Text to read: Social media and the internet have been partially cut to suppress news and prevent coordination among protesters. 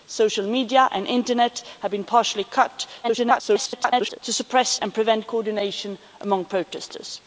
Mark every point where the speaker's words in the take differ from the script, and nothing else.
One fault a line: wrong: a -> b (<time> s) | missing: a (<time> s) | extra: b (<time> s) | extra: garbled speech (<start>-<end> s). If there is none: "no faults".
extra: garbled speech (3.0-4.2 s)
missing: news (4.8 s)